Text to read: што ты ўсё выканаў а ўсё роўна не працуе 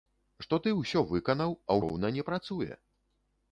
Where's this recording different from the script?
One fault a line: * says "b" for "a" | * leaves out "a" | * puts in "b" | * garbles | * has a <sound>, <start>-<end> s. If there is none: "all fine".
* leaves out "ўсё"